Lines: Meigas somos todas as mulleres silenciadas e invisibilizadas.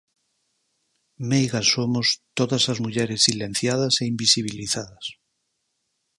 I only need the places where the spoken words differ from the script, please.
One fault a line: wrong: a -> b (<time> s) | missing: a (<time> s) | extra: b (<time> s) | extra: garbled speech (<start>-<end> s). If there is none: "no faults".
no faults